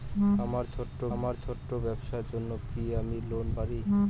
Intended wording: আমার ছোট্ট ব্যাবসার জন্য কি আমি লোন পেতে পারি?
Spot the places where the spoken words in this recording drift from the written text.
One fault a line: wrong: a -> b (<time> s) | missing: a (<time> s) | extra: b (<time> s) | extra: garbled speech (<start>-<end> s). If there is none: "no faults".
extra: আমার ছোট্ট (1.1 s)
missing: পেতে (3.5 s)